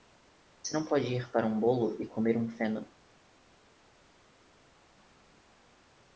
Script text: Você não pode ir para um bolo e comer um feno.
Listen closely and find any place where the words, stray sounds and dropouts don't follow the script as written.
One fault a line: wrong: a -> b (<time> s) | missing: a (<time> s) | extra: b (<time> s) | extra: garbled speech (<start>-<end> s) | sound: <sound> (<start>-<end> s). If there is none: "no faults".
no faults